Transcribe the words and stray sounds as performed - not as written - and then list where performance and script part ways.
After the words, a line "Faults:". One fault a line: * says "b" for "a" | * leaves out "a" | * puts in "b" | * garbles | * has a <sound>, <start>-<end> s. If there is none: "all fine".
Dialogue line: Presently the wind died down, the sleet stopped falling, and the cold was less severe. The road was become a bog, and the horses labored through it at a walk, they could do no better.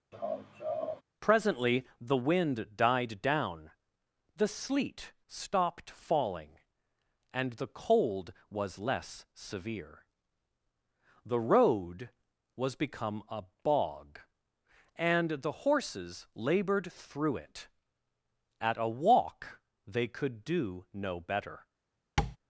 Presently the wind died down, the sleet stopped falling, and the cold was less severe. The road was become a bog, and the horses labored through it at a walk, they could do no better.
Faults:
* has a laugh, 0.1-1.0 s
* has a tap, 22.2-22.4 s